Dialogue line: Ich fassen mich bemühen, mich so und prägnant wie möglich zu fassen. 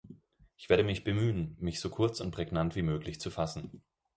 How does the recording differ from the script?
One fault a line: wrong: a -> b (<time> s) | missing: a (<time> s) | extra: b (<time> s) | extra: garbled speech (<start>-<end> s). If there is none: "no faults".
wrong: fassen -> werde (0.7 s)
extra: kurz (1.9 s)